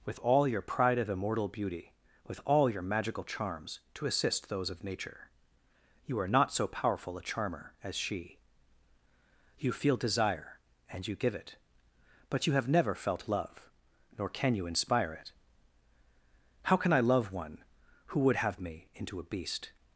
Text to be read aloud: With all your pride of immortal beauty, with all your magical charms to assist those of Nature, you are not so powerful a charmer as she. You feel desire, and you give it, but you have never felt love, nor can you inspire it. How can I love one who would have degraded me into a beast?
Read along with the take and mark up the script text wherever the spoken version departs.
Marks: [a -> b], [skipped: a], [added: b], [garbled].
With all your pride of immortal beauty, with all your magical charms to assist those of Nature, you are not so powerful a charmer as she. You feel desire, and you give it, but you have never felt love, nor can you inspire it. How can I love one who would have [skipped: degraded] me into a beast?